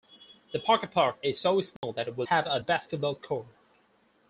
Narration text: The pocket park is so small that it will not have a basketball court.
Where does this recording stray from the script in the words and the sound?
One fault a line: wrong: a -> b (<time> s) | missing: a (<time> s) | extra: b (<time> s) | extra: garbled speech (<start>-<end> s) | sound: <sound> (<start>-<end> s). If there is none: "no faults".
sound: dropout (1.8-1.8 s)
missing: not (2.2 s)